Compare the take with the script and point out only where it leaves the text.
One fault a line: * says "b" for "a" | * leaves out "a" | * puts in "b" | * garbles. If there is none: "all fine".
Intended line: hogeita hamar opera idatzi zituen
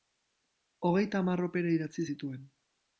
all fine